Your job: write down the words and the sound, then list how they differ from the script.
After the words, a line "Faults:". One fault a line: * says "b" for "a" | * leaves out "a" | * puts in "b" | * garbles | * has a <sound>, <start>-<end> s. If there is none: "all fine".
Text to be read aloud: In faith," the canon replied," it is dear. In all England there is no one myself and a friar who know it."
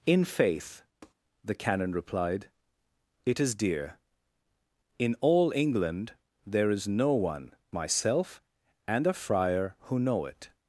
In faith," the canon replied," it is dear. In all England there is no one myself and a friar who know it."
Faults:
* has a tap, 1.0-1.1 s